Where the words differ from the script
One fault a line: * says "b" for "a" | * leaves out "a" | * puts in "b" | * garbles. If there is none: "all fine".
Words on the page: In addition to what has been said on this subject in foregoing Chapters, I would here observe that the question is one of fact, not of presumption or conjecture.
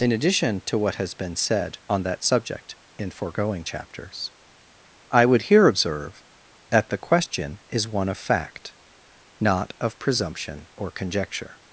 * says "that" for "this"